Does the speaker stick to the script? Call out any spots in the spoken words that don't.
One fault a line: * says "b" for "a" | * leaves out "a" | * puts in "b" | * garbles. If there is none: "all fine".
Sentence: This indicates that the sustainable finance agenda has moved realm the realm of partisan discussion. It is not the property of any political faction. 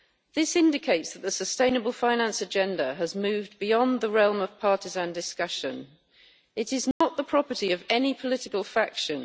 * says "beyond" for "realm"